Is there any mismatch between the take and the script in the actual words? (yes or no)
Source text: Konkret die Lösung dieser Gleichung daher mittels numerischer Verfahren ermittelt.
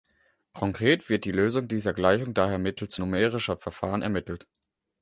yes